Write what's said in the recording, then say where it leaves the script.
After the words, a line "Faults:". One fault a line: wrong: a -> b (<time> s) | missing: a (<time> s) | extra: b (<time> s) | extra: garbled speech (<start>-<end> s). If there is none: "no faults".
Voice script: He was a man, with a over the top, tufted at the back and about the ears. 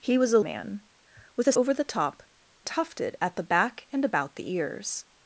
He was a man, with a over the top, tufted at the back and about the ears.
Faults:
no faults